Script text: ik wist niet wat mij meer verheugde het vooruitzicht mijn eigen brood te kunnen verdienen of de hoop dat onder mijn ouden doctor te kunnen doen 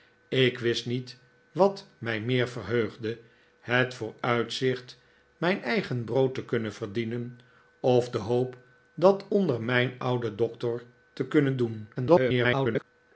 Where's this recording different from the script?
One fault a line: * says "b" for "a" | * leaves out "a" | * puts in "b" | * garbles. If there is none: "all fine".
* garbles